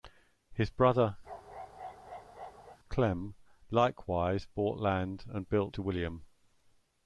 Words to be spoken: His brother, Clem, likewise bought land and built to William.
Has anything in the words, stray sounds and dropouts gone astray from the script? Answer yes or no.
yes